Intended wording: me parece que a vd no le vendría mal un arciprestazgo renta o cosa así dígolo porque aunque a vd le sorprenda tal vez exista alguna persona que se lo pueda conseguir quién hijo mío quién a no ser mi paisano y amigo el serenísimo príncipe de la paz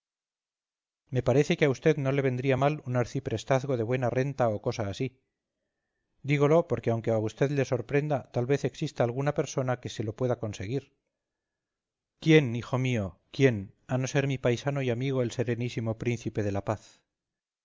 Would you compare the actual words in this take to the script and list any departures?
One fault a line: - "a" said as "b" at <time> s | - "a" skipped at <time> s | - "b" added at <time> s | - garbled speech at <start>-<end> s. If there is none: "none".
- "de buena" added at 3.8 s